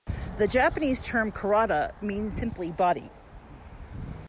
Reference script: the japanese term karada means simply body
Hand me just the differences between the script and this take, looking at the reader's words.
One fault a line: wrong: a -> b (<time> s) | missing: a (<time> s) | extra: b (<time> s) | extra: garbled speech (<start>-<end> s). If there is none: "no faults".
no faults